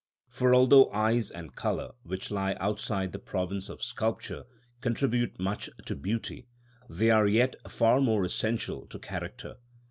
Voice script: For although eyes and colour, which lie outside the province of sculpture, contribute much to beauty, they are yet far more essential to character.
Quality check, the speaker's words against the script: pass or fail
pass